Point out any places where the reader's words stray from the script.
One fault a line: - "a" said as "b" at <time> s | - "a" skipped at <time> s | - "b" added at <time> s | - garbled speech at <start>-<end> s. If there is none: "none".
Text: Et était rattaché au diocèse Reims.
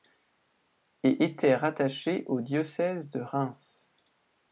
- "de" added at 3.1 s